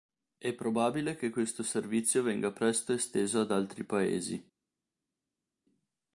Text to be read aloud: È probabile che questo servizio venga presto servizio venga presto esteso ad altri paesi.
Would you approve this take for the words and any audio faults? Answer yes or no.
no